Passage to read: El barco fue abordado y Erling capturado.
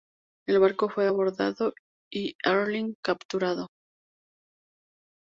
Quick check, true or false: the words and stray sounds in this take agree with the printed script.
true